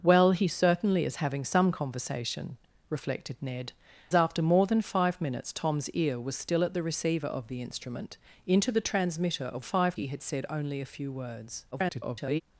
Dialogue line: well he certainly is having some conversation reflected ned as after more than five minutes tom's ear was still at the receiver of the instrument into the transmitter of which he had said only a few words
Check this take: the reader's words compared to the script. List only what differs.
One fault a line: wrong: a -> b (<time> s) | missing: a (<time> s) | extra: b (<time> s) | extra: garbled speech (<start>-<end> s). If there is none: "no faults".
missing: as (3.7 s)
wrong: which -> five (9.6 s)
extra: garbled speech (11.7-12.4 s)